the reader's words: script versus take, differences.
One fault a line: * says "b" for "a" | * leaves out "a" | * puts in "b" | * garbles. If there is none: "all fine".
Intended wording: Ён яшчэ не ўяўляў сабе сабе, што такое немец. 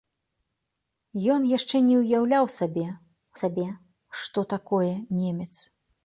all fine